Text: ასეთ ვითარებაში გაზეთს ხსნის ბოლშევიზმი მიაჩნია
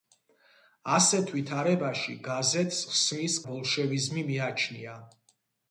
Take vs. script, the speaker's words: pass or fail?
pass